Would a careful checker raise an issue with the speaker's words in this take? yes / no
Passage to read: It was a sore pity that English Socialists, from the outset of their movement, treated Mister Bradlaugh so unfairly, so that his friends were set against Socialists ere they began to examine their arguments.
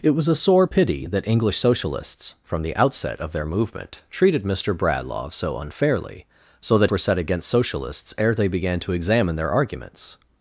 yes